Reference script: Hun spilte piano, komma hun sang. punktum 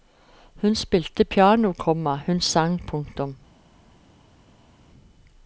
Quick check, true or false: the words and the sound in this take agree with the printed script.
true